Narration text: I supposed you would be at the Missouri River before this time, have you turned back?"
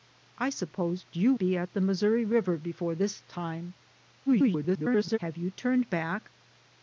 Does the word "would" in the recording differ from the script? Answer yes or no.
yes